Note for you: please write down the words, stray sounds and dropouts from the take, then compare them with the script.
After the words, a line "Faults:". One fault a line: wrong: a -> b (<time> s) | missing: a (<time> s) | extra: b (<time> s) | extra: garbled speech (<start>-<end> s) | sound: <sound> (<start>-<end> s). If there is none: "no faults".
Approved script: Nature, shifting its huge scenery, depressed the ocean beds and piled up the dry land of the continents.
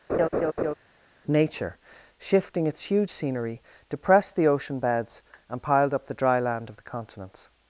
Nature, shifting its huge scenery, depressed the ocean beds and piled up the dry land of the continents.
Faults:
sound: laugh (0.1-0.7 s)